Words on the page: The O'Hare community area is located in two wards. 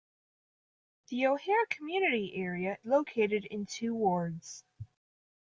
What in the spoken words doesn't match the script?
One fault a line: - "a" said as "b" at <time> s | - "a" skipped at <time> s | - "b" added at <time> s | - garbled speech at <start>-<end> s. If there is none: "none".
- "is" skipped at 2.8 s